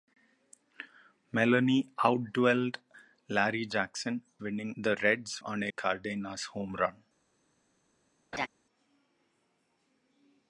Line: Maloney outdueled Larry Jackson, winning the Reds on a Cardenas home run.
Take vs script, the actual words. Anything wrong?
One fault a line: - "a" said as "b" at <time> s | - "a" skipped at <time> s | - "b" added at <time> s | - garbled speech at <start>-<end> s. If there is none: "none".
none